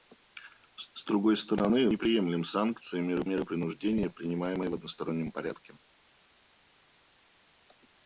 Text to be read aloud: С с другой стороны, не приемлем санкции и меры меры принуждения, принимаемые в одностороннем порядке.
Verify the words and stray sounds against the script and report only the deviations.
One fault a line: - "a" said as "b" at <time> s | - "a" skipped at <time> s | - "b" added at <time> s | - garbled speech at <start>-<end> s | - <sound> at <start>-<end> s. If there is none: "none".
none